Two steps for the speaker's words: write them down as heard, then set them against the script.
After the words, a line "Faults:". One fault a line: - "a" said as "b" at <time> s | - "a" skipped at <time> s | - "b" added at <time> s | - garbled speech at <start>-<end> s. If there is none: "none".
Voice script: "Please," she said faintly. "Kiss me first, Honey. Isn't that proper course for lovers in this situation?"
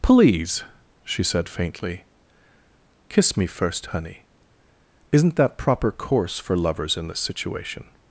"Please," she said faintly. "Kiss me first, Honey. Isn't that proper course for lovers in this situation?"
Faults:
none